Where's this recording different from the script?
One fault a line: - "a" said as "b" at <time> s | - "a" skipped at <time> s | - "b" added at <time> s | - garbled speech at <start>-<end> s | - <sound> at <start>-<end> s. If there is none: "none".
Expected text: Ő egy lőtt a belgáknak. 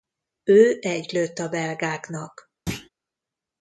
- thud at 2.7-2.9 s